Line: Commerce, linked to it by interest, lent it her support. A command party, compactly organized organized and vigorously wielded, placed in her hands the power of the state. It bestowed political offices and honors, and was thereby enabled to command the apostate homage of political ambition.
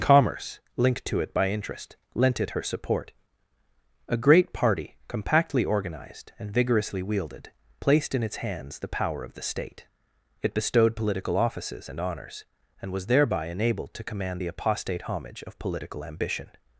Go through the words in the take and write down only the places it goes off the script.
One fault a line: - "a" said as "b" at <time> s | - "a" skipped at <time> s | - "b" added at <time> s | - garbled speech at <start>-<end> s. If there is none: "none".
- "command" said as "great" at 4.2 s
- "organized" skipped at 6.3 s
- "her" said as "its" at 8.2 s